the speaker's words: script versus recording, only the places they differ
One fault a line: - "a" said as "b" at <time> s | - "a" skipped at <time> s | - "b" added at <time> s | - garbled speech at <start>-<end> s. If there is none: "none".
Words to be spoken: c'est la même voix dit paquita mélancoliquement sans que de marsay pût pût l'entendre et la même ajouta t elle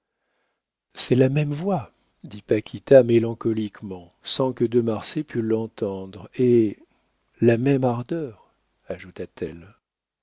- "pût" skipped at 5.4 s
- "ardeur" added at 7.8 s